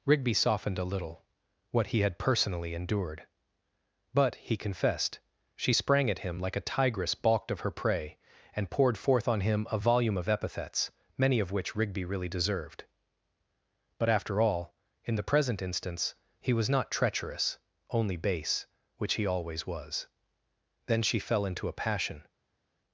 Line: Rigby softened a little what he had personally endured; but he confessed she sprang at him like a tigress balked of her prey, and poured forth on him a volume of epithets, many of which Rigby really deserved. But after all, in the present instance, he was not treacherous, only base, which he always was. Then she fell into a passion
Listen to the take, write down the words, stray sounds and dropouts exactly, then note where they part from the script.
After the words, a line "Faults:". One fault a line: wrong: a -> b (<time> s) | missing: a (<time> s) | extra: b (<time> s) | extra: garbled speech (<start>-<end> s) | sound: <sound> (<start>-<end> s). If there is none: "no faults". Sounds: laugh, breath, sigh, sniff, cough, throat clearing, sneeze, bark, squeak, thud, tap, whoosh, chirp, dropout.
Rigby softened a little what he had personally endured; but he confessed she sprang at him like a tigress balked of her prey, and poured forth on him a volume of epithets, many of which Rigby really deserved. But after all, in the present instance, he was not treacherous, only base, which he always was. Then she fell into a passion
Faults:
no faults